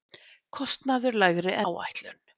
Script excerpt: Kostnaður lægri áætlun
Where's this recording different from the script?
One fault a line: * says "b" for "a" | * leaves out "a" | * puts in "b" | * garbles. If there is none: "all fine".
all fine